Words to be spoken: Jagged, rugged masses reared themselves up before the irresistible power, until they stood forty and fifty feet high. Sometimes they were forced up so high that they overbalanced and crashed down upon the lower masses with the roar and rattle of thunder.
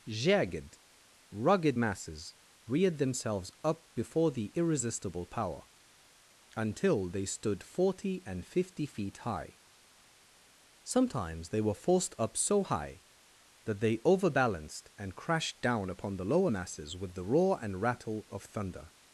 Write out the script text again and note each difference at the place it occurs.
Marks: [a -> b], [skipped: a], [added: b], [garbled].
Jagged, rugged masses reared themselves up before the irresistible power, until they stood forty and fifty feet high. Sometimes they were forced up so high that they overbalanced and crashed down upon the lower masses with the roar and rattle of thunder.